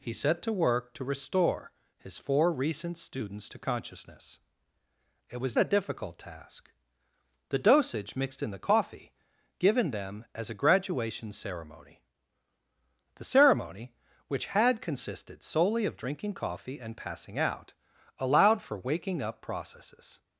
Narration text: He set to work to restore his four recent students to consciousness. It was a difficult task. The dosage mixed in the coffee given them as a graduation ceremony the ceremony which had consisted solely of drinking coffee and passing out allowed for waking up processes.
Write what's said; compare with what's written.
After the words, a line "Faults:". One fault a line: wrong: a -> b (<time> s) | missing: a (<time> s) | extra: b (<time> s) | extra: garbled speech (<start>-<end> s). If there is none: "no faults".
He set to work to restore his four recent students to consciousness. It was a difficult task. The dosage mixed in the coffee given them as a graduation ceremony the ceremony which had consisted solely of drinking coffee and passing out allowed for waking up processes.
Faults:
no faults